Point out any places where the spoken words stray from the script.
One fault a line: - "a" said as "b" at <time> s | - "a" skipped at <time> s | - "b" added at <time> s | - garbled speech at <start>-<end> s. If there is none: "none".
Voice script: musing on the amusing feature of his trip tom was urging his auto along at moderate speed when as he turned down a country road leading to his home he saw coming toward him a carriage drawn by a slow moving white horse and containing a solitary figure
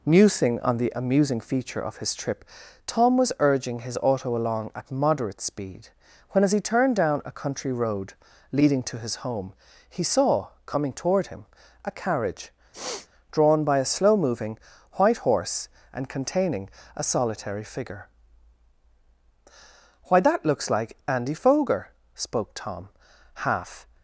- "why that looks like andy foger spoke tom half" added at 20.1 s